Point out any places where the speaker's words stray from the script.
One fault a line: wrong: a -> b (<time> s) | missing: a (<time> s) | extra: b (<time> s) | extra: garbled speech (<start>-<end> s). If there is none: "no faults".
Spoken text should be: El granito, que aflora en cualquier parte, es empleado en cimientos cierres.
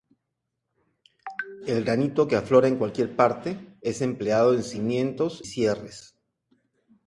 no faults